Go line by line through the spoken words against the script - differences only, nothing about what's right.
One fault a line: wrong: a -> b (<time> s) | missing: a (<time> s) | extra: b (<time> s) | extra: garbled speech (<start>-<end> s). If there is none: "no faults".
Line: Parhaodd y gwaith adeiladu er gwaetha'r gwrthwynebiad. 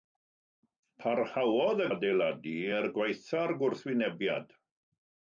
missing: gwaith (1.9 s)